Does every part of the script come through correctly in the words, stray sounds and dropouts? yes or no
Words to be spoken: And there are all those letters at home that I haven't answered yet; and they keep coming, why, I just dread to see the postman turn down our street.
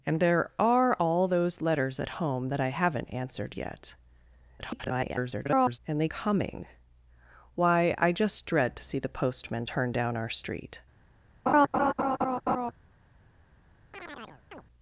no